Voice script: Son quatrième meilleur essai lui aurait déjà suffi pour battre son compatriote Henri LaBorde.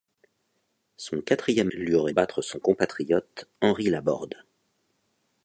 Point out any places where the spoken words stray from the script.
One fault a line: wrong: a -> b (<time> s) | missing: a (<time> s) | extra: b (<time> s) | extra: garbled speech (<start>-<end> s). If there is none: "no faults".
missing: meilleur essai (1.7 s)
missing: déjà suffi pour (2.1 s)